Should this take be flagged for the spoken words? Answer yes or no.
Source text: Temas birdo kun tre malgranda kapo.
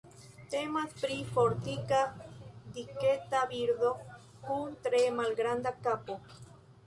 yes